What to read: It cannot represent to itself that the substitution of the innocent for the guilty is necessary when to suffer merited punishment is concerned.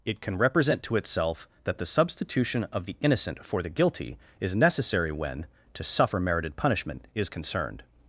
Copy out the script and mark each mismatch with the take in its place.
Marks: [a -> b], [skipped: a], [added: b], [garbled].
It [cannot -> can] represent to itself that the substitution of the innocent for the guilty is necessary when to suffer merited punishment is concerned.